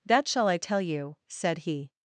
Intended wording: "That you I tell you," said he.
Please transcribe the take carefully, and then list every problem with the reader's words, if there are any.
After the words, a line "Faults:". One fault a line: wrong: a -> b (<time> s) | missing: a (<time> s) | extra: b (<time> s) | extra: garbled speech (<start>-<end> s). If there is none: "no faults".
"That shall I tell you," said he.
Faults:
wrong: you -> shall (0.3 s)